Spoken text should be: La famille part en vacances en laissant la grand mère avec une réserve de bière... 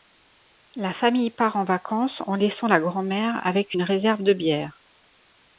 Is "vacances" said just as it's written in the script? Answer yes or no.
yes